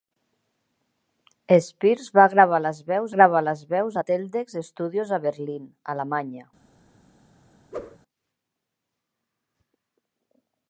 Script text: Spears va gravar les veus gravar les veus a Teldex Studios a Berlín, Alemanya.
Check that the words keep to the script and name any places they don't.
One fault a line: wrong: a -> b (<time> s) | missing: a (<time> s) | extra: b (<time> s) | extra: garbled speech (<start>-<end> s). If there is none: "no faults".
no faults